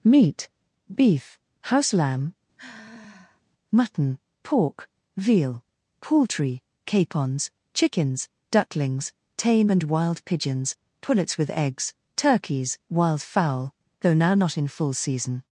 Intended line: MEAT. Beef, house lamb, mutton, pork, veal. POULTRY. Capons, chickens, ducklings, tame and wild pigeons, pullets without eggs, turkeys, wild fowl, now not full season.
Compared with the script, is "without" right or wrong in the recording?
wrong